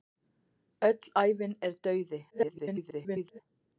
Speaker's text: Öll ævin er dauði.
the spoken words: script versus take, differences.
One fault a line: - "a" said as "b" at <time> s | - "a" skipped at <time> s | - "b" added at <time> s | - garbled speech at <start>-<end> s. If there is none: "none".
- garbled speech at 2.3-3.4 s